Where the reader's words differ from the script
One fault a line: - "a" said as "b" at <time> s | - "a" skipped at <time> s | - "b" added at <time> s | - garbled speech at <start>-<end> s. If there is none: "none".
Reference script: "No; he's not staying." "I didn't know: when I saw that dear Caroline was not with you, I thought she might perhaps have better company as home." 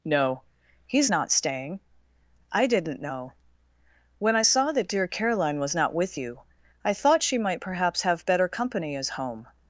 none